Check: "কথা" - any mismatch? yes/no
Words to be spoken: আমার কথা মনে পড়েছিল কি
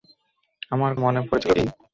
yes